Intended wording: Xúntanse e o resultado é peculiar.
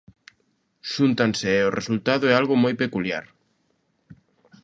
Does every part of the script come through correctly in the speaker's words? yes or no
no